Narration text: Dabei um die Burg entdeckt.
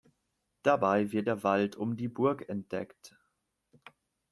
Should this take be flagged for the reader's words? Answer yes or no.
yes